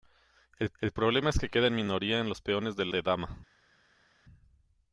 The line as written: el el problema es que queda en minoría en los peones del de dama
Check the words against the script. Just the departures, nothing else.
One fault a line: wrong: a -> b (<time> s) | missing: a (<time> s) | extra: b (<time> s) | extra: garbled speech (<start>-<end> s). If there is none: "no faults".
no faults